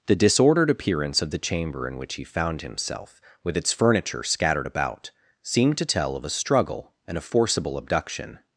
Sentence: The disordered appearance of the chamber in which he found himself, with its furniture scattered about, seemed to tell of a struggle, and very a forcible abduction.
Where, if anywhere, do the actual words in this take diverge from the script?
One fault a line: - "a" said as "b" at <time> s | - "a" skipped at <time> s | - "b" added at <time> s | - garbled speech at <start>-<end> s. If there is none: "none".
- "very" skipped at 7.2 s